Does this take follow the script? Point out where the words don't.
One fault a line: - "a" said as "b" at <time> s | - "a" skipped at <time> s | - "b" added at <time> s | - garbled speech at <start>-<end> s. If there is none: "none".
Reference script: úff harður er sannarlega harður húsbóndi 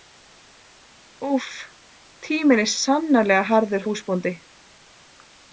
- "harður" said as "tíminn" at 2.3 s